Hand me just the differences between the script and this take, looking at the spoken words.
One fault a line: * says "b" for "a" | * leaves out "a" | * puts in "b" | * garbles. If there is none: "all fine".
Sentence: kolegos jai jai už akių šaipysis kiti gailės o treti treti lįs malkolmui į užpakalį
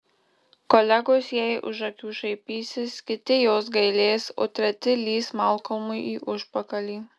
* leaves out "jai"
* puts in "jos"
* leaves out "treti"